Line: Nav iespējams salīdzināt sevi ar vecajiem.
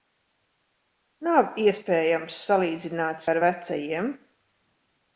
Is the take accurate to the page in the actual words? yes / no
no